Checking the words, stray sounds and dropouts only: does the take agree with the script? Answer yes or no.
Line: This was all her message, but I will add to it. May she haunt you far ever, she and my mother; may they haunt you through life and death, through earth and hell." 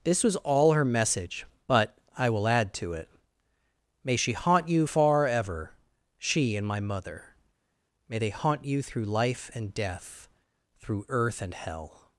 yes